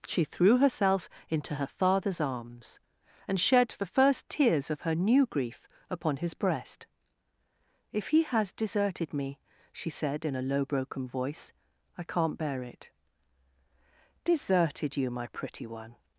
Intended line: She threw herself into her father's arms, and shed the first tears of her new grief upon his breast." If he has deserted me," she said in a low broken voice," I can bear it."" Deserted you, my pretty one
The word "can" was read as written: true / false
false